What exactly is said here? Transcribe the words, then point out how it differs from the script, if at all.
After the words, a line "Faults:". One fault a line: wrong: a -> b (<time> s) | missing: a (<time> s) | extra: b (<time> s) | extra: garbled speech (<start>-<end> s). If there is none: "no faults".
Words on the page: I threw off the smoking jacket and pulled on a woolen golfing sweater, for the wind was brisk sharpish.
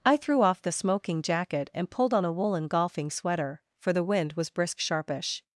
I threw off the smoking jacket and pulled on a woolen golfing sweater, for the wind was brisk sharpish.
Faults:
no faults